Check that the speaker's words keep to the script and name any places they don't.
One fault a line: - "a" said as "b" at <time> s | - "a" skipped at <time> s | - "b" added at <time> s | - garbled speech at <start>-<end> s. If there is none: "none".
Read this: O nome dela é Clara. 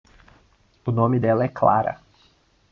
none